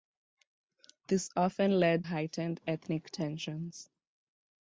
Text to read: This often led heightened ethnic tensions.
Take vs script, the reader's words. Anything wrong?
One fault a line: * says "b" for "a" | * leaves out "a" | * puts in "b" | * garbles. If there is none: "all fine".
all fine